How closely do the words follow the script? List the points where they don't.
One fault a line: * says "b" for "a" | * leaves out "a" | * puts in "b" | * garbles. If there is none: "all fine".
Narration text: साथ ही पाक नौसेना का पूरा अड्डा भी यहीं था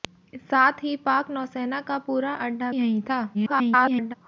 * leaves out "भी"
* garbles